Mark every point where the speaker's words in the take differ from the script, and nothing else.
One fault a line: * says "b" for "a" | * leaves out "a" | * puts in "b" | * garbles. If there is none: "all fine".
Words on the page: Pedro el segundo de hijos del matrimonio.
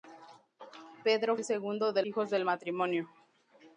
all fine